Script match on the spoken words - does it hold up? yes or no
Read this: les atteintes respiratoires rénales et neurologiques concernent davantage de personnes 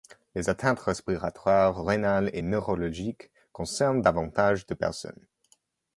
yes